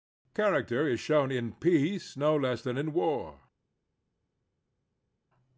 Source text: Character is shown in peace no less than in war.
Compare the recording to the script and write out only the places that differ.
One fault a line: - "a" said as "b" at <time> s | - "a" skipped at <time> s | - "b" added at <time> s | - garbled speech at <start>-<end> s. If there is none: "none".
none